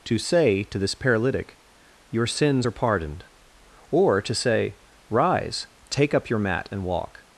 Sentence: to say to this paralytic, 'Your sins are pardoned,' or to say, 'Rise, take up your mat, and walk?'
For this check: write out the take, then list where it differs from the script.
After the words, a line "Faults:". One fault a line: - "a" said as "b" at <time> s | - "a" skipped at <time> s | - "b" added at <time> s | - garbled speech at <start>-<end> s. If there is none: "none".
to say to this paralytic, 'Your sins are pardoned,' or to say, 'Rise, take up your mat, and walk?'
Faults:
none